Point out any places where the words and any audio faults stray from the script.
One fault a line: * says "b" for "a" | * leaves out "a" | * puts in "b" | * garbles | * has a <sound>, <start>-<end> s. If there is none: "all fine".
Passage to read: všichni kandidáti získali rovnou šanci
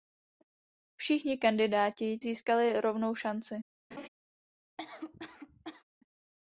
* has a laugh, 3.9-4.1 s
* has a cough, 4.8-5.8 s